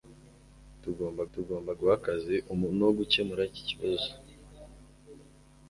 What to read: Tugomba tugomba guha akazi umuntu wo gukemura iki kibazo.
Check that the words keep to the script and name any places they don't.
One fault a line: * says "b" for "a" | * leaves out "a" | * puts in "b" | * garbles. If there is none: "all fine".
all fine